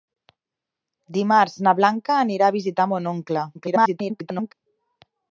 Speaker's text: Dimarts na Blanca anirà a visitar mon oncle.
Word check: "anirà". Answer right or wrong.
right